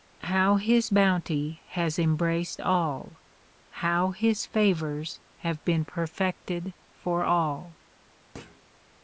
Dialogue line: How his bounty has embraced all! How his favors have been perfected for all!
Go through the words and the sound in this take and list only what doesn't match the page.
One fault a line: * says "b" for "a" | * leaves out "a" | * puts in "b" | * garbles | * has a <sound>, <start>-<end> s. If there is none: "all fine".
* has a thud, 8.3-8.6 s